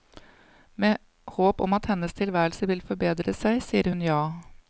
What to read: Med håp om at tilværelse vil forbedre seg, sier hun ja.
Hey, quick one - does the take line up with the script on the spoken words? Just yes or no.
no